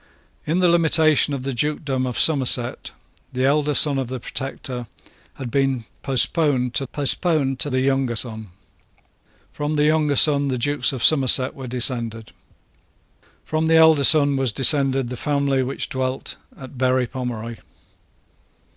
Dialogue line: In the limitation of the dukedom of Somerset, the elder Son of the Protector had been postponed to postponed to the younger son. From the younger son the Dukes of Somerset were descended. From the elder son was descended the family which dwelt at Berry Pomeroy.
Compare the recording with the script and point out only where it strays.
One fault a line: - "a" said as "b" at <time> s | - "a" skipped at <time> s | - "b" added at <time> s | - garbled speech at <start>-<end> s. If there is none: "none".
none